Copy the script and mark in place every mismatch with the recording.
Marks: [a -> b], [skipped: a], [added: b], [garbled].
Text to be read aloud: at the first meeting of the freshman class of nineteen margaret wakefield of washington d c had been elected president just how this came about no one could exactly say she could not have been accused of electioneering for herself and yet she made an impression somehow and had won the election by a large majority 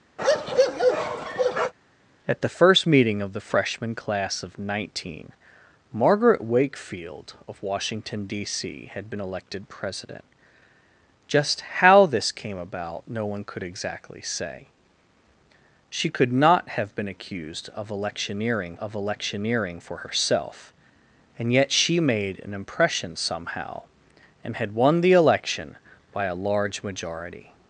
at the first meeting of the freshman class of nineteen margaret wakefield of washington d c had been elected president just how this came about no one could exactly say she could not have been accused of electioneering [added: of electioneering] for herself and yet she made an impression somehow and had won the election by a large majority